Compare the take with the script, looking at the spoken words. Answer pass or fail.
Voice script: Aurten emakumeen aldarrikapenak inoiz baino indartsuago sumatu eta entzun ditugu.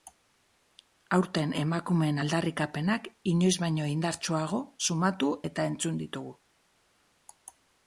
pass